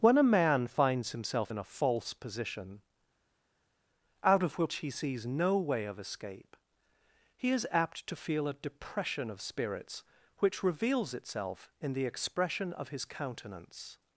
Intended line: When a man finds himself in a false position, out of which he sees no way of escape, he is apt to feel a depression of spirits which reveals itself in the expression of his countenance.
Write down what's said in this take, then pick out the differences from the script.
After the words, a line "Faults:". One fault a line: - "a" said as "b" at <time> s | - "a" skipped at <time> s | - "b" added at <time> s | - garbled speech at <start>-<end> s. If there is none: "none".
When a man finds himself in a false position, out of which he sees no way of escape, he is apt to feel a depression of spirits which reveals itself in the expression of his countenance.
Faults:
none